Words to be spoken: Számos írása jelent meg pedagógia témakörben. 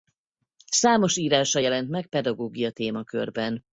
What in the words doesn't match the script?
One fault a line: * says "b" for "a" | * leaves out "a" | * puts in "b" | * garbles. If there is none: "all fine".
all fine